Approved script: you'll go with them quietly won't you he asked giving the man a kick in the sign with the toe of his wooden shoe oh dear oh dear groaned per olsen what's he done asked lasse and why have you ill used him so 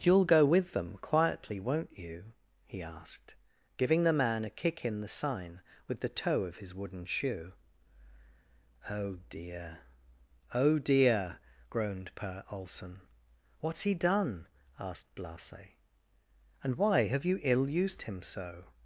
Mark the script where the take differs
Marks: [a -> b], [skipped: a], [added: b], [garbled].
you'll go with them quietly won't you he asked giving the man a kick in the sign with the toe of his wooden shoe oh dear oh dear groaned per olsen what's he done asked lasse and why have you ill used him so